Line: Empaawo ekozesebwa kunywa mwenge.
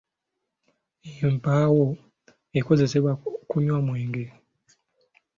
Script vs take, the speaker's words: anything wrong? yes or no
no